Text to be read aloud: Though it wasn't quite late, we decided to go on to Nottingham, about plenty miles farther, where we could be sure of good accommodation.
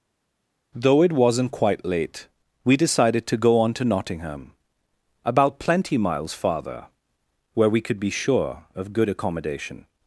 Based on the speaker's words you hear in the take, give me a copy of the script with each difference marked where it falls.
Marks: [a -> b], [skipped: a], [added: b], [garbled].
Though it wasn't quite late, we decided to go on to Nottingham, about plenty miles farther, where we could be sure of good accommodation.